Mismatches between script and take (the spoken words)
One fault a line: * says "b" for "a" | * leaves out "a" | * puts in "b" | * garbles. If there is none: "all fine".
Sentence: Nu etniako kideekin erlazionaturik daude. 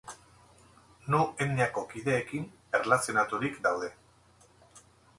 all fine